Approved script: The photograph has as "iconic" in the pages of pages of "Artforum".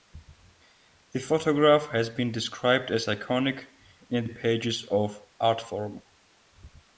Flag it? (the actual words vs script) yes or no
yes